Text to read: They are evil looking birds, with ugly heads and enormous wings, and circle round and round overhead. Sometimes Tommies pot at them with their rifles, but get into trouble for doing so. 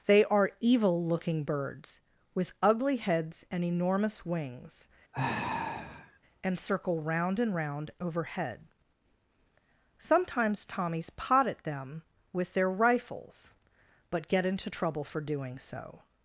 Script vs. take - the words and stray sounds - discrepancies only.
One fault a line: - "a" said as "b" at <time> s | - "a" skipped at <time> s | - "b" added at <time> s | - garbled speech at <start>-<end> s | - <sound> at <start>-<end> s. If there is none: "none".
- sigh at 5.1-6.2 s